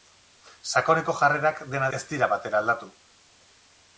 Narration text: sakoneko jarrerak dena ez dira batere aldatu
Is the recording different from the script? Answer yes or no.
no